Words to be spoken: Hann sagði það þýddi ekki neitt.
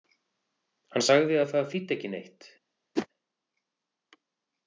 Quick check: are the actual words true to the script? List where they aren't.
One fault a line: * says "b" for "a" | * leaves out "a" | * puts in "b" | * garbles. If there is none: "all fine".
* puts in "að"